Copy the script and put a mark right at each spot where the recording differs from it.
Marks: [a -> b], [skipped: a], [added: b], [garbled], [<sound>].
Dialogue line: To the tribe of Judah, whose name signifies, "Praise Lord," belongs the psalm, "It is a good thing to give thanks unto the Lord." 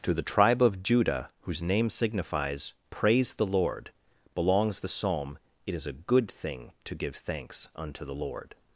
To the tribe of Judah, whose name signifies, "Praise [added: the] Lord," belongs the psalm, "It is a good thing to give thanks unto the Lord."